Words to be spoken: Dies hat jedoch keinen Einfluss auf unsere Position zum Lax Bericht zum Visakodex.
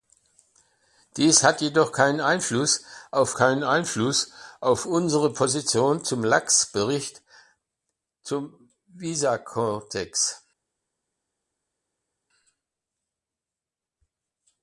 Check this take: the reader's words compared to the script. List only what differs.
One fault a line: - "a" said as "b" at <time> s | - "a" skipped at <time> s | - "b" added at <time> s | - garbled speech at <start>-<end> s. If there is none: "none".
- "keinen Einfluss auf" added at 3.3 s